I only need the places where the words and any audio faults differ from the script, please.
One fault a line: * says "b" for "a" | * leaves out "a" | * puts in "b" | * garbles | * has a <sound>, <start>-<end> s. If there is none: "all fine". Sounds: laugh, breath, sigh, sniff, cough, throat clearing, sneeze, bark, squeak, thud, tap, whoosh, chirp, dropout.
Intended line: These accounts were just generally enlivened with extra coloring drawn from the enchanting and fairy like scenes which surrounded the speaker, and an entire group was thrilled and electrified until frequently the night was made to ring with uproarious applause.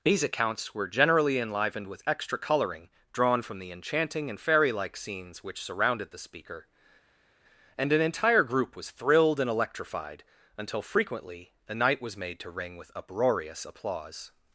* leaves out "just"